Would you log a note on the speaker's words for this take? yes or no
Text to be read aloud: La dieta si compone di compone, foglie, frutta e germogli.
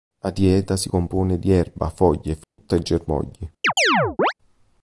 yes